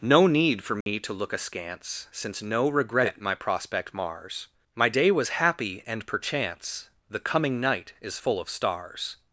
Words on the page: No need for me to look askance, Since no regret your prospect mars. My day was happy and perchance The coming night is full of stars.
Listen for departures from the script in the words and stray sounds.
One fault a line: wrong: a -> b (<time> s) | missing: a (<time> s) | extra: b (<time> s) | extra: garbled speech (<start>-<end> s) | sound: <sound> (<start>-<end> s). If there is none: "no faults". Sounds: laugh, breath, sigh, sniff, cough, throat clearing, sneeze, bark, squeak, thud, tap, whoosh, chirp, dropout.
sound: dropout (0.8-0.9 s)
wrong: your -> my (3.2 s)